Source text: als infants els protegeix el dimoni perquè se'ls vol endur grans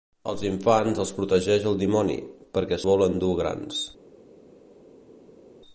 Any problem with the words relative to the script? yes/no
yes